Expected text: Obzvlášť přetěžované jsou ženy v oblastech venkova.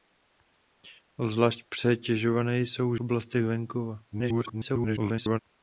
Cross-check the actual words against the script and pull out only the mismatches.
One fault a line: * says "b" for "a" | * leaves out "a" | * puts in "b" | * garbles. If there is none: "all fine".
* leaves out "ženy v"
* garbles